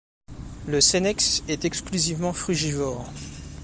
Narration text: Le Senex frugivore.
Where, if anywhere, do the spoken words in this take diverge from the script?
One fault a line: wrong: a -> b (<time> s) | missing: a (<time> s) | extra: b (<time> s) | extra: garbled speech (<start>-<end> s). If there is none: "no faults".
extra: est exclusivement (1.5 s)